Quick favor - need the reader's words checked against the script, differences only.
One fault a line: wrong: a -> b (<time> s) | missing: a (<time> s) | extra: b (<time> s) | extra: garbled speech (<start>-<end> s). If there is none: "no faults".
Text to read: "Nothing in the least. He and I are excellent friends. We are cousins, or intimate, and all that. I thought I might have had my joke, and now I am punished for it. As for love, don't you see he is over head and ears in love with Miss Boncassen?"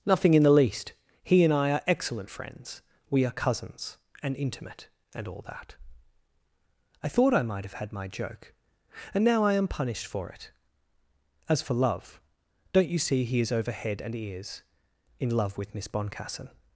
wrong: or -> and (4.2 s)